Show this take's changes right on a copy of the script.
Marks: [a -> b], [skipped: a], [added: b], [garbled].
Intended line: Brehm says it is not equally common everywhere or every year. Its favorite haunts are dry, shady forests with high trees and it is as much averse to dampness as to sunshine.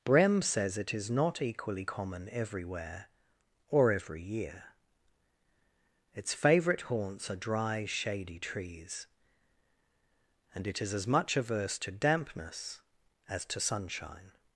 Brehm says it is not equally common everywhere or every year. Its favorite haunts are dry, shady [skipped: forests with high] trees and it is as much averse to dampness as to sunshine.